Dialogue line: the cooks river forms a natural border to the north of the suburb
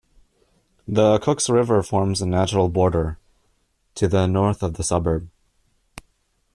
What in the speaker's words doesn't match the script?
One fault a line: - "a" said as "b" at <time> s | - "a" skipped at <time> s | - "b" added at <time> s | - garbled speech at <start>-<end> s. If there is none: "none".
none